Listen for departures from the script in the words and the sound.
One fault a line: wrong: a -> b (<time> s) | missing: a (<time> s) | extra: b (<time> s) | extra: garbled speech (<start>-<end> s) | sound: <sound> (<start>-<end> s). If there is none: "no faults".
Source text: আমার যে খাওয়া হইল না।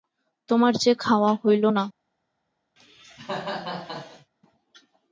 wrong: আমার -> তোমার (0.5 s)
sound: cough (2.8-4.3 s)